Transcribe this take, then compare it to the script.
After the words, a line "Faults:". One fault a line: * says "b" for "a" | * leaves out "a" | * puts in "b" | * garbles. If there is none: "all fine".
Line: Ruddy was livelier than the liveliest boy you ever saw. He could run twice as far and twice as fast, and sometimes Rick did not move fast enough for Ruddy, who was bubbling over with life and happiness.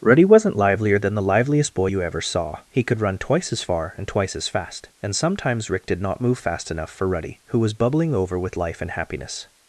Ruddy wasn't livelier than the liveliest boy you ever saw. He could run twice as far and twice as fast, and sometimes Rick did not move fast enough for Ruddy, who was bubbling over with life and happiness.
Faults:
* says "wasn't" for "was"